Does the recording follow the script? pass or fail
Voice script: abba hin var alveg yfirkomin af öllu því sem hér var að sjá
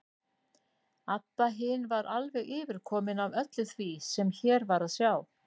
pass